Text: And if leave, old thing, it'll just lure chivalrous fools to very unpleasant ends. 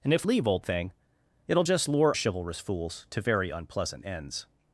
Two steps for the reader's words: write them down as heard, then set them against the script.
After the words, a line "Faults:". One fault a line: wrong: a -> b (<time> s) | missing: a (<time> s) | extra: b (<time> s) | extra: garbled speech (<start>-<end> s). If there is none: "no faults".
And if leave, old thing, it'll just lure chivalrous fools to very unpleasant ends.
Faults:
no faults